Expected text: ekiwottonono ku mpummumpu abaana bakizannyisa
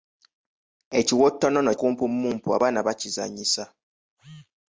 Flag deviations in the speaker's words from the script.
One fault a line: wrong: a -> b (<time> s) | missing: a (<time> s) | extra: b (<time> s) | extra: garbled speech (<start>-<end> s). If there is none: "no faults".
no faults